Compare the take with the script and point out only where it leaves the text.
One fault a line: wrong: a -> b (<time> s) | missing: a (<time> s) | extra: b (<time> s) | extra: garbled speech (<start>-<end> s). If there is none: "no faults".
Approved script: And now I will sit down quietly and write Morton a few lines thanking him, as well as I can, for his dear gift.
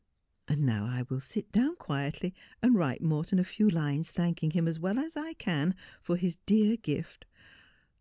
no faults